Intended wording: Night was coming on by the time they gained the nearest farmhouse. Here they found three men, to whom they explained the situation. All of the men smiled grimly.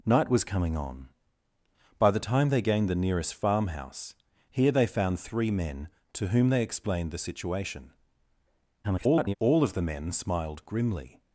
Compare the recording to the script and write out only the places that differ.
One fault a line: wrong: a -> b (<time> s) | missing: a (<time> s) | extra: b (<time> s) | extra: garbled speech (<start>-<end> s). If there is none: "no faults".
extra: garbled speech (8.8-9.4 s)